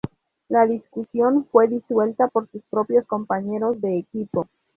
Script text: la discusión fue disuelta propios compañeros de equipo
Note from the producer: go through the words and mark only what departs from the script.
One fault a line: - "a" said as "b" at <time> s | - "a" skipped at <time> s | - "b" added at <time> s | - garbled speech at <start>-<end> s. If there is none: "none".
- "por sus" added at 2.2 s